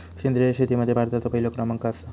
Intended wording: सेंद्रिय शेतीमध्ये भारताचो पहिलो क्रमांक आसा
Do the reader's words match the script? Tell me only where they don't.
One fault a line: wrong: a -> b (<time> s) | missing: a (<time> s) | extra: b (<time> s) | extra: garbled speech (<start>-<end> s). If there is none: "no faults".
no faults